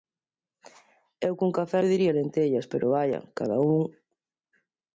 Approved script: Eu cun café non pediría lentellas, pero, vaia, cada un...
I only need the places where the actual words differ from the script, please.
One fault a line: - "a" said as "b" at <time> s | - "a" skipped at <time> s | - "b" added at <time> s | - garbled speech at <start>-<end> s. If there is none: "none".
- "non" skipped at 1.8 s